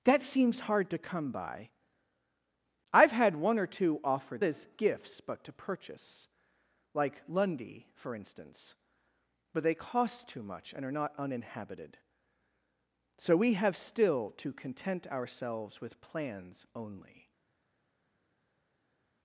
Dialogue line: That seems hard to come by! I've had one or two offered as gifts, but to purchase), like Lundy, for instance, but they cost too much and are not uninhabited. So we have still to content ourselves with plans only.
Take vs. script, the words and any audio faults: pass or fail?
pass